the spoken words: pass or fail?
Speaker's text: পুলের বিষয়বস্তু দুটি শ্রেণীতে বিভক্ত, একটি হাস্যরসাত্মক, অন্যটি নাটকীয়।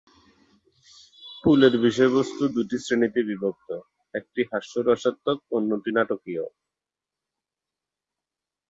pass